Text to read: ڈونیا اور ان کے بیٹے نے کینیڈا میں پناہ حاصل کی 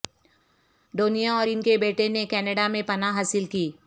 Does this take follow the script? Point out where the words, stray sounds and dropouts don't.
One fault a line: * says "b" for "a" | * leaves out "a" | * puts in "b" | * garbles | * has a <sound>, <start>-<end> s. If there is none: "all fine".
all fine